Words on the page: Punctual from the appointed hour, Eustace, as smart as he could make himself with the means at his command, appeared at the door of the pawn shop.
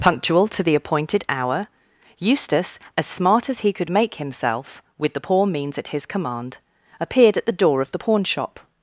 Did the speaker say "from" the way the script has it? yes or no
no